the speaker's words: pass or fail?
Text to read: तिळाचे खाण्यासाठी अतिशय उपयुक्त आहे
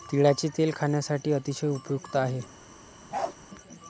fail